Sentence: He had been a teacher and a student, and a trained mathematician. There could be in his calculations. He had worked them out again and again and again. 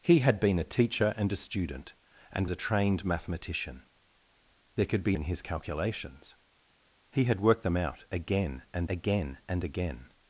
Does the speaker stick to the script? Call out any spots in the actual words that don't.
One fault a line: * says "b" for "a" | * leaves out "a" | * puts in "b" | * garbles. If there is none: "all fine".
all fine